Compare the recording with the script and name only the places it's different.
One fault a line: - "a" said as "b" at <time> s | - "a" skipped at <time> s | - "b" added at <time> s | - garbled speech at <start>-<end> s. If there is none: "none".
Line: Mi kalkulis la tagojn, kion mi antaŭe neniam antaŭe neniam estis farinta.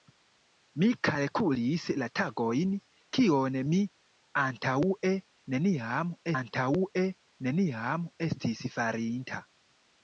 none